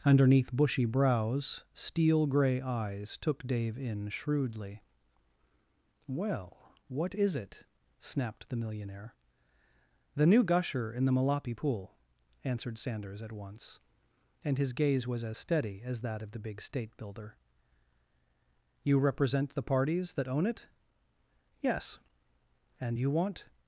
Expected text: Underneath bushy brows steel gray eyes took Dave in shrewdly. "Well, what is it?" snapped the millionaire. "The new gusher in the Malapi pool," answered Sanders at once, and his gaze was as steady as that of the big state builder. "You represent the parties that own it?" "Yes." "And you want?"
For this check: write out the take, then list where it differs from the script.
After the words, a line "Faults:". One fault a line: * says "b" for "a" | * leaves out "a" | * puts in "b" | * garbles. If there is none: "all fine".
Underneath bushy brows steel gray eyes took Dave in shrewdly. "Well, what is it?" snapped the millionaire. "The new gusher in the Malapi pool," answered Sanders at once, and his gaze was as steady as that of the big state builder. "You represent the parties that own it?" "Yes." "And you want?"
Faults:
all fine